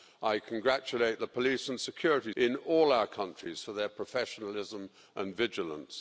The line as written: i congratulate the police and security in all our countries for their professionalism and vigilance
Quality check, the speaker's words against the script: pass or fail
pass